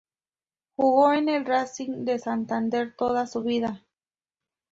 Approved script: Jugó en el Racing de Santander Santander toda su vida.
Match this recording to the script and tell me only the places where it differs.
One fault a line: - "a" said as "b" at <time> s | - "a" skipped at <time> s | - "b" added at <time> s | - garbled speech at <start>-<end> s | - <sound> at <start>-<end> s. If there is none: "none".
- "Santander" skipped at 2.9 s